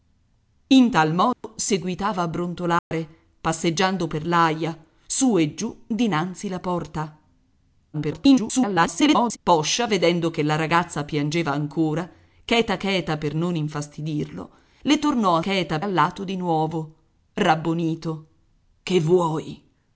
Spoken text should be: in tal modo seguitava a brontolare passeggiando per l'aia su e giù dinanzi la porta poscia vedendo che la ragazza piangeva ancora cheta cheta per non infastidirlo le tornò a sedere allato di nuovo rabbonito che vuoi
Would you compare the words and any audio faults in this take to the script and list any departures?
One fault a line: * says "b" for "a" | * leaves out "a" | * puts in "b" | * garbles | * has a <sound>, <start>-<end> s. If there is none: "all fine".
* has a dropout, 1.3-1.4 s
* has a dropout, 2.8-2.9 s
* garbles
* says "cheta" for "sedere"